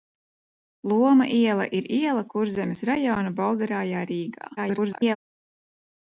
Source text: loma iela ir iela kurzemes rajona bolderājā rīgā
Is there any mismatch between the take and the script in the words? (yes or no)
yes